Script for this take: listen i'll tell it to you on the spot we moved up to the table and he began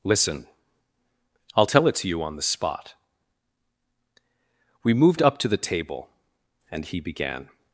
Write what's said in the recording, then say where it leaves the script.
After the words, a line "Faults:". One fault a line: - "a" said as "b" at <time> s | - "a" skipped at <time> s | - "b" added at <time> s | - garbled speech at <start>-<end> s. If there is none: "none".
listen i'll tell it to you on the spot we moved up to the table and he began
Faults:
none